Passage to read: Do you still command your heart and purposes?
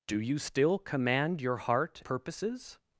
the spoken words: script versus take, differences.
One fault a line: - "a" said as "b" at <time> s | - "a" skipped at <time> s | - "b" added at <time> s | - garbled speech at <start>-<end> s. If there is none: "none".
- "and" skipped at 2.0 s